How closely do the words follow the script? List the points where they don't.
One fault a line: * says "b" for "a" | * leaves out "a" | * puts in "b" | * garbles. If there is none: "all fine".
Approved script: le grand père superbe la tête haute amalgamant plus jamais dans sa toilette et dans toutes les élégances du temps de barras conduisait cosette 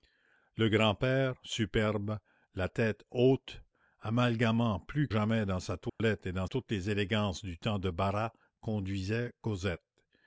all fine